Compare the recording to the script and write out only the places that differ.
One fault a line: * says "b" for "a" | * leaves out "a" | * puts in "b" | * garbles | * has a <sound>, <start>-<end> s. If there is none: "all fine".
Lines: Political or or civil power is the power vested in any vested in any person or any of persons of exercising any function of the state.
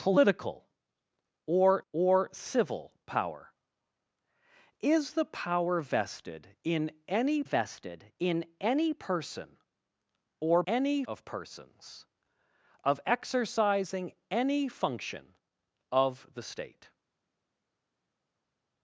all fine